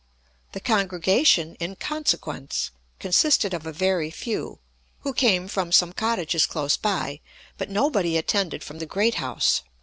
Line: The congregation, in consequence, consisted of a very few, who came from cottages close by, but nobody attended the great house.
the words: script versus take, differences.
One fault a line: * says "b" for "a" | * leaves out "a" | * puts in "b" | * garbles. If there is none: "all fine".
* puts in "some"
* puts in "from"